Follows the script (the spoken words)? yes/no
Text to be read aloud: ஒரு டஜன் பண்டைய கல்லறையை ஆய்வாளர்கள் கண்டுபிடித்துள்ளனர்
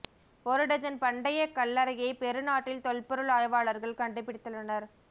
no